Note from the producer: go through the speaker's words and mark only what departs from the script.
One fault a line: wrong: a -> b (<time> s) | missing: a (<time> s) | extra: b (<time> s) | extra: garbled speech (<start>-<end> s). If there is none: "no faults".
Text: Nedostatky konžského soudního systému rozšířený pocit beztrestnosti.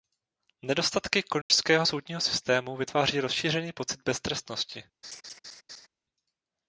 extra: vytváří (2.8 s)